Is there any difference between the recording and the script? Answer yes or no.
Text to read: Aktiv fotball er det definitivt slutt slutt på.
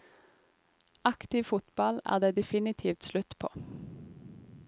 yes